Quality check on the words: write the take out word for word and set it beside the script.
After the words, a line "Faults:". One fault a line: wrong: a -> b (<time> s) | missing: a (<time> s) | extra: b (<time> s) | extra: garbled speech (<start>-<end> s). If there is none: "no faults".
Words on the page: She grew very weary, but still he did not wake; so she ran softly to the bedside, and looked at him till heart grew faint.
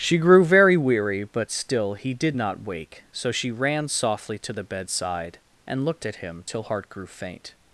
She grew very weary, but still he did not wake; so she ran softly to the bedside, and looked at him till heart grew faint.
Faults:
no faults